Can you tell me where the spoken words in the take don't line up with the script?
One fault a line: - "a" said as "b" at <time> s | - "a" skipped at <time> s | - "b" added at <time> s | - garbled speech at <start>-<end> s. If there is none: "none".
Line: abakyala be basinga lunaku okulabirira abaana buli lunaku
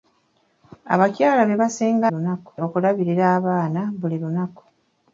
none